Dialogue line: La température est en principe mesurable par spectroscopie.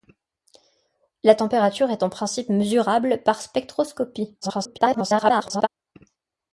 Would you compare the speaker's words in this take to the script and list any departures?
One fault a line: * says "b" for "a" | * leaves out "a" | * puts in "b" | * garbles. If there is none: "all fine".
* garbles